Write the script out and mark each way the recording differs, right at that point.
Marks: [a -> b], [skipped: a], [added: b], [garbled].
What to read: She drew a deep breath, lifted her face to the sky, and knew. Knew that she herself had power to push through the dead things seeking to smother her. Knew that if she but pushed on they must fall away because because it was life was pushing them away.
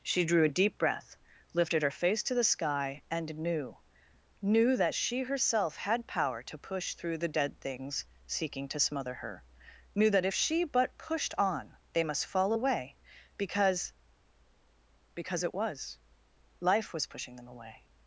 She drew a deep breath, lifted her face to the sky, and knew. Knew that she herself had power to push through the dead things seeking to smother her. Knew that if she but pushed on they must fall away because because it was life was pushing them away.